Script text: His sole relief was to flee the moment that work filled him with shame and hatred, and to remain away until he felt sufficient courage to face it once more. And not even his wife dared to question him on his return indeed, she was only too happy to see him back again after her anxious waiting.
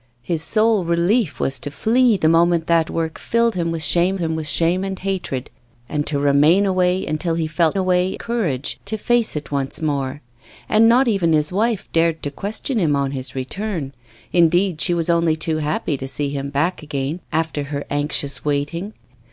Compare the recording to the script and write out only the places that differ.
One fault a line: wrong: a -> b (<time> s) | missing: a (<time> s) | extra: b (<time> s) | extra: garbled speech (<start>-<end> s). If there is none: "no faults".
extra: him with shame (4.2 s)
wrong: sufficient -> away (7.7 s)